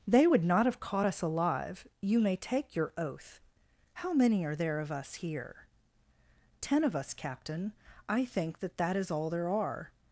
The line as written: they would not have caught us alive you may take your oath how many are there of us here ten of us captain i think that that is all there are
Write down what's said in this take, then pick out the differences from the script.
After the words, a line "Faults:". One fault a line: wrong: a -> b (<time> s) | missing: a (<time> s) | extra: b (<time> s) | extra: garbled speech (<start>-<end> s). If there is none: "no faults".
they would not have caught us alive you may take your oath how many are there of us here ten of us captain i think that that is all there are
Faults:
no faults